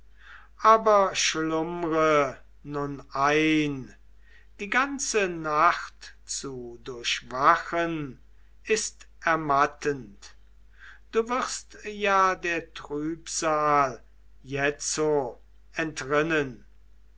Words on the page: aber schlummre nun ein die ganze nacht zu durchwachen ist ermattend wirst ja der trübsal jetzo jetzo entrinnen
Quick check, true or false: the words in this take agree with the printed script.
false